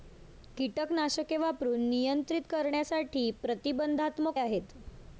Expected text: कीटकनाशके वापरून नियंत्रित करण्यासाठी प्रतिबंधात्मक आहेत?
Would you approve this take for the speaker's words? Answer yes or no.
yes